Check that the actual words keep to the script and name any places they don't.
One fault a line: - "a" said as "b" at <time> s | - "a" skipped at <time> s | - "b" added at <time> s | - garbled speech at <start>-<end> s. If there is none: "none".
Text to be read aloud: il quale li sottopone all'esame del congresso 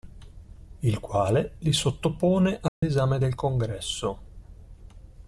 none